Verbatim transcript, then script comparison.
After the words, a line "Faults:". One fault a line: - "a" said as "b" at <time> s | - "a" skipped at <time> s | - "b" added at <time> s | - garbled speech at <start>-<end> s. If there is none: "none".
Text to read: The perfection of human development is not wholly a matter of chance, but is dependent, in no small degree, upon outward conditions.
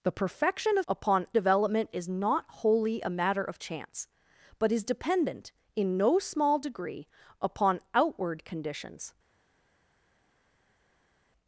The perfection of upon development is not wholly a matter of chance, but is dependent, in no small degree, upon outward conditions.
Faults:
- "human" said as "upon" at 0.9 s